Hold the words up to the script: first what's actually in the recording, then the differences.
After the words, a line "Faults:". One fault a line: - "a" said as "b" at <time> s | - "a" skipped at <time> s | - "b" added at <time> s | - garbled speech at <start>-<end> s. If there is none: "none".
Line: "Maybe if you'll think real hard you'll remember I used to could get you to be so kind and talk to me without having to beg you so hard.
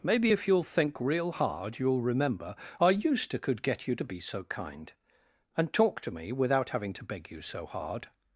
"Maybe if you'll think real hard you'll remember I used to could get you to be so kind and talk to me without having to beg you so hard.
Faults:
none